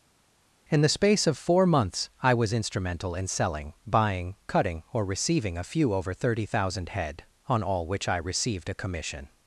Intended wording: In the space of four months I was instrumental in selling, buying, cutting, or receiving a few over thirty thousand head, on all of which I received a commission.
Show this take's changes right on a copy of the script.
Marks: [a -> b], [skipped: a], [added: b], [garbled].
In the space of four months I was instrumental in selling, buying, cutting, or receiving a few over thirty thousand head, on all [skipped: of] which I received a commission.